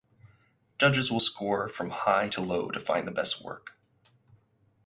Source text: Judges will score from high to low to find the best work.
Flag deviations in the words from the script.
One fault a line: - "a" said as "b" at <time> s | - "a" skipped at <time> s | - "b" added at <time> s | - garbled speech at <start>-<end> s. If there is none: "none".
none